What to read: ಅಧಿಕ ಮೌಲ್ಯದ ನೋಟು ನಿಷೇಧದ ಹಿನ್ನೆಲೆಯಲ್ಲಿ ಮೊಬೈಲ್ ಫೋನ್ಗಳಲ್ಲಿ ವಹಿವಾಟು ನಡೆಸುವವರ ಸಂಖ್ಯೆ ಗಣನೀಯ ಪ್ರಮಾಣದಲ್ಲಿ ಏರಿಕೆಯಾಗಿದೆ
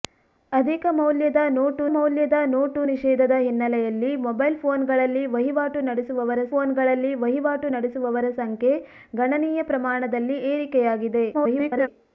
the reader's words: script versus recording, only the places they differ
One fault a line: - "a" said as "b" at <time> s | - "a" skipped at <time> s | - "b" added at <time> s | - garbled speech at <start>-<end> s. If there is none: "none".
- "ಮೌಲ್ಯದ ನೋಟು" added at 1.9 s
- "ಫೋನ್ಗಳಲ್ಲಿ ವಹಿವಾಟು ನಡೆಸುವವರ" added at 6.5 s
- garbled speech at 11.3-11.9 s